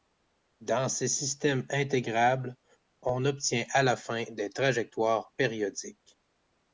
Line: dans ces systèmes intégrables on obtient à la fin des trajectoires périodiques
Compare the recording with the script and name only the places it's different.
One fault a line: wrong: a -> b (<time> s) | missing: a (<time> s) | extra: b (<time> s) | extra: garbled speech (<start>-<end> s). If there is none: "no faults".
no faults